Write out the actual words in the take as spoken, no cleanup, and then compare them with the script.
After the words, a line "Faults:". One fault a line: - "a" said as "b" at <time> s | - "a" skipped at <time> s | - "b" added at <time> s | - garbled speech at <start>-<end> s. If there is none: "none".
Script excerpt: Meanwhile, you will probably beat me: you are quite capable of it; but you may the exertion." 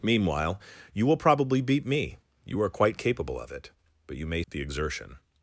Meanwhile, you will probably beat me: you are quite capable of it; but you may the exertion."
Faults:
none